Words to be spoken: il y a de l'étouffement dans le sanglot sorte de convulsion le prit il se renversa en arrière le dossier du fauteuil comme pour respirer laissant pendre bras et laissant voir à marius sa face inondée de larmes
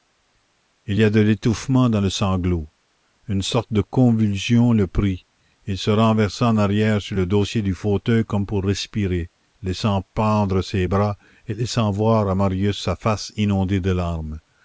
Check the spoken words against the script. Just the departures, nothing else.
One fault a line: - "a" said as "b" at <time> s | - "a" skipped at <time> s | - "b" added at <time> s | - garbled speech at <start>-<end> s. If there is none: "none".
- "une" added at 3.3 s
- "sur" added at 7.0 s
- "ses" added at 10.6 s